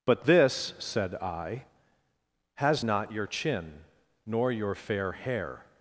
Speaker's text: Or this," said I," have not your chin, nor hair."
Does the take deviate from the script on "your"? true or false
false